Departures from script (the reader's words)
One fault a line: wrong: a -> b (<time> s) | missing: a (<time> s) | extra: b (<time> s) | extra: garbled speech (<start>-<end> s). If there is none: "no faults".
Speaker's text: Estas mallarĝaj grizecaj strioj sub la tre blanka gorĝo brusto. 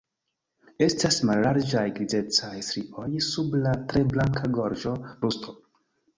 no faults